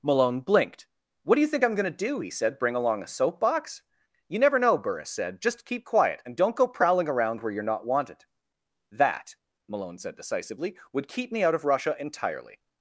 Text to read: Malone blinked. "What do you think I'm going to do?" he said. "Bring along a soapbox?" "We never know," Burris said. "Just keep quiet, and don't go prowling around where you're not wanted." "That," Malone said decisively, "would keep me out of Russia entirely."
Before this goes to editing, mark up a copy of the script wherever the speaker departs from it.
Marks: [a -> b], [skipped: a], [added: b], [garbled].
Malone blinked. "What do you think I'm going to do?" he said. "Bring along a soapbox?" ["We -> You] never know," Burris said. "Just keep quiet, and don't go prowling around where you're not wanted." "That," Malone said decisively, "would keep me out of Russia entirely."